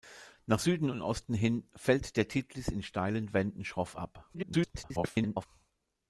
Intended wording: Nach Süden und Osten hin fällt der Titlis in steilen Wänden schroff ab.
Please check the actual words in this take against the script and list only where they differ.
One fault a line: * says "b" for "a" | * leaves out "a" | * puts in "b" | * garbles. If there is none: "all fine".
* garbles